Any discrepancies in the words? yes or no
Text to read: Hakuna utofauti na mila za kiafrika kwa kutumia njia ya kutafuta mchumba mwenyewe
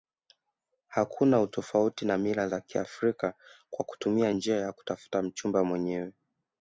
no